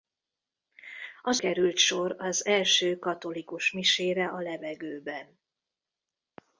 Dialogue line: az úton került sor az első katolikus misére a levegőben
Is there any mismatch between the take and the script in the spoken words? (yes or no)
yes